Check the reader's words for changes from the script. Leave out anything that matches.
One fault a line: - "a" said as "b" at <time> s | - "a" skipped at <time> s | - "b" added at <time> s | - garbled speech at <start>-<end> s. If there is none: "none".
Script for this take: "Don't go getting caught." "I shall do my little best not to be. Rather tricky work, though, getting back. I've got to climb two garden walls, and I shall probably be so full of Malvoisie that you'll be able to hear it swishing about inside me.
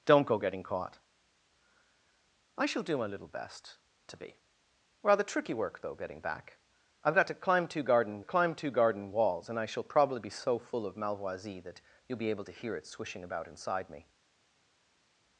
- "not" skipped at 3.8 s
- "climb two garden" added at 8.2 s